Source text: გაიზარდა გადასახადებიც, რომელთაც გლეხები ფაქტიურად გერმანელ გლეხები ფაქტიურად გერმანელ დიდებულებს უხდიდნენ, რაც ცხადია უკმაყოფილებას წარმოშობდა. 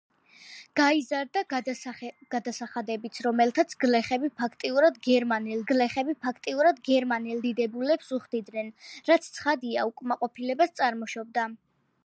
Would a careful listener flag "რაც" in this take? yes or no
no